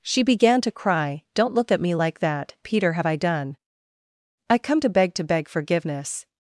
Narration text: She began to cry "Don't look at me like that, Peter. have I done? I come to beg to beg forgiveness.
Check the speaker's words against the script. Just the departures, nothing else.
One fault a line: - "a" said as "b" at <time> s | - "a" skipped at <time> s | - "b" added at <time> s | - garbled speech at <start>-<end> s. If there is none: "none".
none